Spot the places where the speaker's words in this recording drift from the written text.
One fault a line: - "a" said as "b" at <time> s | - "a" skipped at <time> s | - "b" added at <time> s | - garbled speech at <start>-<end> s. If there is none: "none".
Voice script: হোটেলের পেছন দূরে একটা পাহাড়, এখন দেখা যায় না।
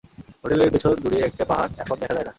none